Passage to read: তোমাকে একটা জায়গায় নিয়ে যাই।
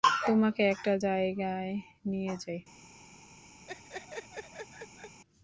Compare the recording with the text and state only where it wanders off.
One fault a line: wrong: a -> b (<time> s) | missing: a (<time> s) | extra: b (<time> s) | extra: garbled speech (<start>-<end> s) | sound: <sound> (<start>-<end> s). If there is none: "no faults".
sound: laugh (3.7-5.2 s)